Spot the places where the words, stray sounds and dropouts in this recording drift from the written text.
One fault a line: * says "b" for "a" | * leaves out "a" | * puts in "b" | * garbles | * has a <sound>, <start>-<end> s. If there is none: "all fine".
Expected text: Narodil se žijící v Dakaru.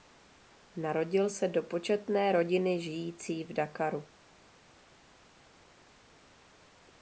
* puts in "do početné rodiny"